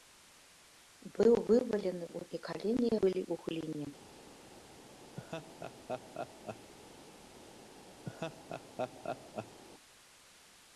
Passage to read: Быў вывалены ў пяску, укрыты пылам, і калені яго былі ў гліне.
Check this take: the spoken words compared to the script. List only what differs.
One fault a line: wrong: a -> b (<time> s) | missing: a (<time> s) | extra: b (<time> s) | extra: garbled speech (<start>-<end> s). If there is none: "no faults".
missing: пяску укрыты пылам (2.2 s)
missing: яго (2.9 s)